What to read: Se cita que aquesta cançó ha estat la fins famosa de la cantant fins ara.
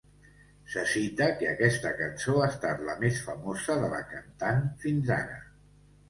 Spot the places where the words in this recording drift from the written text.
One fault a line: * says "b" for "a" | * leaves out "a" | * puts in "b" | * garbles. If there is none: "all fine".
* says "més" for "fins"